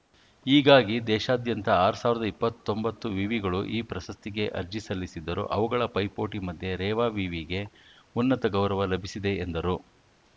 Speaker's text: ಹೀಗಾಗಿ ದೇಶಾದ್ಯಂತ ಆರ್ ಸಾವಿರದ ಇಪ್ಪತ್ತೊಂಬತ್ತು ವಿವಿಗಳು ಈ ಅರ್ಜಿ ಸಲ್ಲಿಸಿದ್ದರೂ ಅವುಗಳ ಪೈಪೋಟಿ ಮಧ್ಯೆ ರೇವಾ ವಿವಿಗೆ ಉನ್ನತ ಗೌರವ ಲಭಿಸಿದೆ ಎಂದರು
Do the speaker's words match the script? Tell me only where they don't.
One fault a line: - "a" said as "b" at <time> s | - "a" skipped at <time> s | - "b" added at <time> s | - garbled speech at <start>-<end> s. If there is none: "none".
- "ಪ್ರಶಸ್ತಿಗೆ" added at 3.9 s